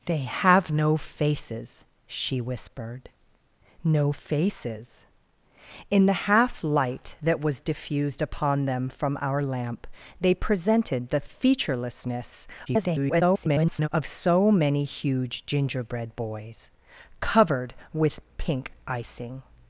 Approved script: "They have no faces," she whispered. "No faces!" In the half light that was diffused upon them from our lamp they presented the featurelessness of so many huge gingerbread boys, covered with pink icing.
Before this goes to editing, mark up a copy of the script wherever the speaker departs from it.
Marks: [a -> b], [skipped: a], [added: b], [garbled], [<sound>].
"They have no faces," she whispered. "No faces!" In the half light that was diffused upon them from our lamp they presented the featurelessness [garbled] of so many huge gingerbread boys, covered with pink icing.